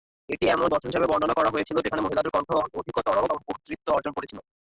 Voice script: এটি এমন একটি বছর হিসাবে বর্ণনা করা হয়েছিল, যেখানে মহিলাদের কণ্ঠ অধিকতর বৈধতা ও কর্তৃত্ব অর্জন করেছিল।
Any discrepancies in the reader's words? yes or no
yes